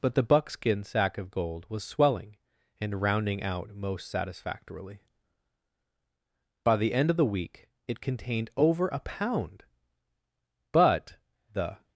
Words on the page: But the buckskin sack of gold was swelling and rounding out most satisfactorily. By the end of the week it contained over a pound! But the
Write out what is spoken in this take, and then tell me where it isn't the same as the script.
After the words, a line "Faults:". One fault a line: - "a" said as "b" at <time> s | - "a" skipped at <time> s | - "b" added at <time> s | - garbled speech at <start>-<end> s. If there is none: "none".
But the buckskin sack of gold was swelling and rounding out most satisfactorily. By the end of the week it contained over a pound! But the
Faults:
none